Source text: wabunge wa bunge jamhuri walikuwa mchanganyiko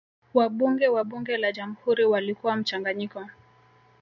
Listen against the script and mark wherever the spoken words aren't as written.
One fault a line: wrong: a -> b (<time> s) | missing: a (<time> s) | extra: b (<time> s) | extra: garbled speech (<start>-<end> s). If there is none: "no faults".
extra: la (1.4 s)